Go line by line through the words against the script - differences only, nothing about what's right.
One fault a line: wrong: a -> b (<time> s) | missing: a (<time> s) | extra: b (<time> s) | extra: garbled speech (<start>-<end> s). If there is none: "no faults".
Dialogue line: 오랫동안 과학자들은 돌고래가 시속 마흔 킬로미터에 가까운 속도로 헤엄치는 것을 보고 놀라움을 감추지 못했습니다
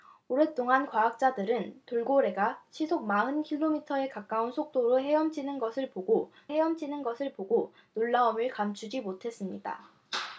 extra: 헤엄치는 것을 보고 (6.5 s)